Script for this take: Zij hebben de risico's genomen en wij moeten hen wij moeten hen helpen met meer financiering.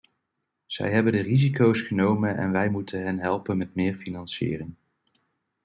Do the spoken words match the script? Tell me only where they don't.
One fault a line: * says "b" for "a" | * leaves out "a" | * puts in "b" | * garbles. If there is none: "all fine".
* leaves out "wij moeten hen"